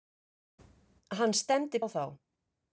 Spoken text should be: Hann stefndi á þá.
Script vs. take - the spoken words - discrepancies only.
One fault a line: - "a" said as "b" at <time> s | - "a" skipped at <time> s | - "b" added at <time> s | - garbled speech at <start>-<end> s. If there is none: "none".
none